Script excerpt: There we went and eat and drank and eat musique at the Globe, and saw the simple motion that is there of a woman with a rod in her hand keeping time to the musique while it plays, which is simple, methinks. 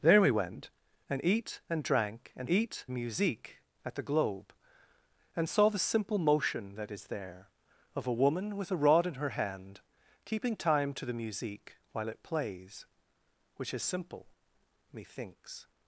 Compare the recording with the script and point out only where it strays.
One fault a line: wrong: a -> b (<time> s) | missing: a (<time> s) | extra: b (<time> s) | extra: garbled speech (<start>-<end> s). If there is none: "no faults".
no faults